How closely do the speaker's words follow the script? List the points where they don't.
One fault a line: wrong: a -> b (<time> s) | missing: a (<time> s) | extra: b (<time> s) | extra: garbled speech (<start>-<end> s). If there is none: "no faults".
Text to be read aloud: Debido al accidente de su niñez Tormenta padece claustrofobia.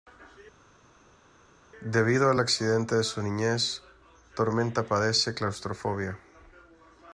no faults